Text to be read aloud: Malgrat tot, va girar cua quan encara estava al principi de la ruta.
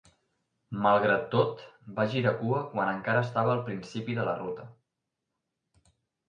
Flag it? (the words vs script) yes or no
no